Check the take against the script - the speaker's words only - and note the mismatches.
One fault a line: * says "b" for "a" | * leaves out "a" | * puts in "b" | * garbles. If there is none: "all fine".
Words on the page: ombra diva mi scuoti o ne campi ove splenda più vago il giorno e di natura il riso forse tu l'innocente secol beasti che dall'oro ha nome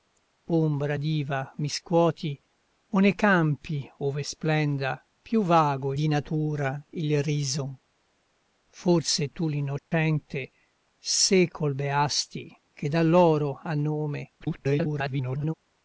* leaves out "il giorno e"
* garbles